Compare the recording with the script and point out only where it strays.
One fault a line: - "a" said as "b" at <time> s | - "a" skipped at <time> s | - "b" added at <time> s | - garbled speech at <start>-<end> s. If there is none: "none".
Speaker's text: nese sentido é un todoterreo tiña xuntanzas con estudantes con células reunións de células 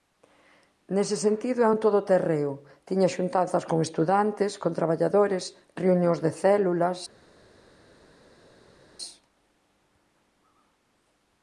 - "células" said as "traballadores" at 4.8 s